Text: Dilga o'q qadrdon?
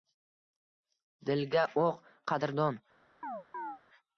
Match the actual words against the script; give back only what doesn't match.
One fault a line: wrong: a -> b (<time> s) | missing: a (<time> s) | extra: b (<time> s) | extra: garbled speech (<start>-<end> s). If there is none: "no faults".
no faults